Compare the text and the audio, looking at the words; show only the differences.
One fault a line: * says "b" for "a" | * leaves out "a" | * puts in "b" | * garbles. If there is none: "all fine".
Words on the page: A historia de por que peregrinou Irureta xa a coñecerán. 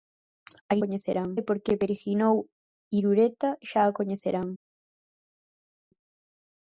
* says "coñecerán" for "historia"